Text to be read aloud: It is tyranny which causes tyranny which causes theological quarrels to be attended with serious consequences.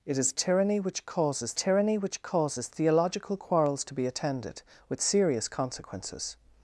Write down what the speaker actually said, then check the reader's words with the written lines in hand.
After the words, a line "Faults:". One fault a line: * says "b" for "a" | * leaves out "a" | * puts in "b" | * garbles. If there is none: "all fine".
It is tyranny which causes tyranny which causes theological quarrels to be attended with serious consequences.
Faults:
all fine